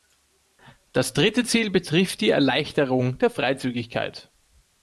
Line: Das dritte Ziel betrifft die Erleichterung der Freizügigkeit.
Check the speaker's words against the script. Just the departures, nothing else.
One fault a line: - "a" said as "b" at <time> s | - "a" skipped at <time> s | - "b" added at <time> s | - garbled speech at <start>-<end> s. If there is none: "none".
none